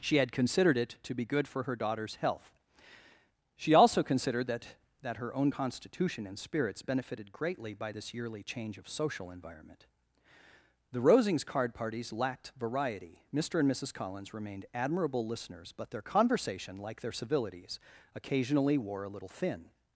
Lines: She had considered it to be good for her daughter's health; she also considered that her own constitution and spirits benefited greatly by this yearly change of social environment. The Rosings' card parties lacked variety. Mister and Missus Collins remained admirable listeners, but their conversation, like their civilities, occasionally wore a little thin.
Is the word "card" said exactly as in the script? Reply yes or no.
yes